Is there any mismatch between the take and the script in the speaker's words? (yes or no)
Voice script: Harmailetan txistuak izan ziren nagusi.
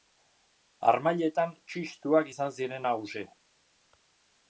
no